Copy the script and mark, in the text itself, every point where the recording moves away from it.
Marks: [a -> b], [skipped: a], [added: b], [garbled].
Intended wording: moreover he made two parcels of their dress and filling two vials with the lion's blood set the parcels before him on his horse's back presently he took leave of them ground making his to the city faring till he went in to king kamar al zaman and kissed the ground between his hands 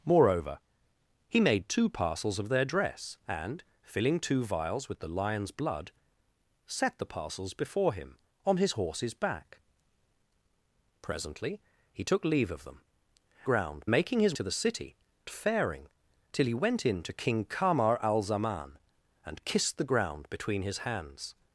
moreover he made two parcels of their dress and filling two vials with the lion's blood set the parcels before him on his horse's back presently he took leave of them ground making his to the city faring till he went in to king kamar al zaman and kissed the ground between his hands